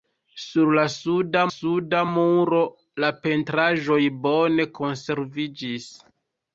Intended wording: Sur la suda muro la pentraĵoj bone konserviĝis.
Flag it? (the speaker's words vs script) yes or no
yes